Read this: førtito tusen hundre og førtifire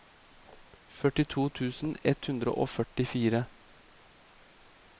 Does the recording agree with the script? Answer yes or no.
no